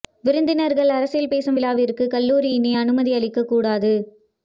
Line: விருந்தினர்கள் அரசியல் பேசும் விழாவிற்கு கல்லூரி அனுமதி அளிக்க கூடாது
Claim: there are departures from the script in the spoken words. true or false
true